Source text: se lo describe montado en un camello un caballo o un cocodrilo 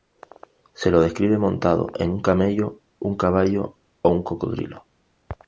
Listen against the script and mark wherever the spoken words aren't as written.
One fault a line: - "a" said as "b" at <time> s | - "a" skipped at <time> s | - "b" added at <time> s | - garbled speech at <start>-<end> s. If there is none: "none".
none